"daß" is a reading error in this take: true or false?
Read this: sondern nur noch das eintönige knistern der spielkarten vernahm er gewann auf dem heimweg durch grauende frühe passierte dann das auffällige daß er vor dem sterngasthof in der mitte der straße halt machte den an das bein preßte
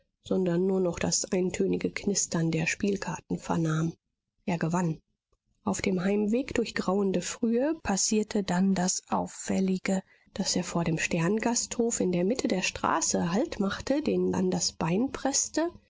false